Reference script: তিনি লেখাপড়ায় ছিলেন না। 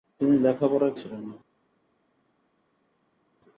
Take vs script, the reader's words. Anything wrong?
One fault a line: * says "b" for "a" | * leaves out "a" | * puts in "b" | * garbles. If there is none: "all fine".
all fine